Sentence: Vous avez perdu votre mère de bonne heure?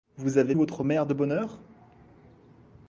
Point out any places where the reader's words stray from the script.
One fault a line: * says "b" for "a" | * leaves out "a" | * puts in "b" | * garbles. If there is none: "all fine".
* leaves out "perdu"